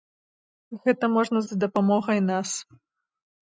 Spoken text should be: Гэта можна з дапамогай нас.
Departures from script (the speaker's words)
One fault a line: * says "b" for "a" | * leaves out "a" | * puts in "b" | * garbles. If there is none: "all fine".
all fine